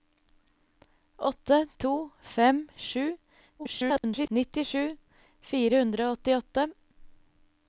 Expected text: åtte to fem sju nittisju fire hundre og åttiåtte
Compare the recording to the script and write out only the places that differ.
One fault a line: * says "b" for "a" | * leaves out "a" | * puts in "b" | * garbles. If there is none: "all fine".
* garbles